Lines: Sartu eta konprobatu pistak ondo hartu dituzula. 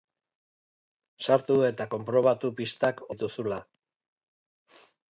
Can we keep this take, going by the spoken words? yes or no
no